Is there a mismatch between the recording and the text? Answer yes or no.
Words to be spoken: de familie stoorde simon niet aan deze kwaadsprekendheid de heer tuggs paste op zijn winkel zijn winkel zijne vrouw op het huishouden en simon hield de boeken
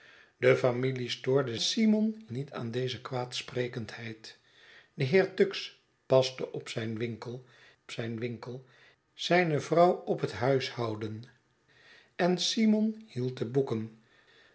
no